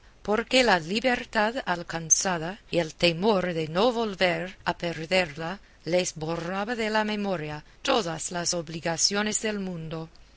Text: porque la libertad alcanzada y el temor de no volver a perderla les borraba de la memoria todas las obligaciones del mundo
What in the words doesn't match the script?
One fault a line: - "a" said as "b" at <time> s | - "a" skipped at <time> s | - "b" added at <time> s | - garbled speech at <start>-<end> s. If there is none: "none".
none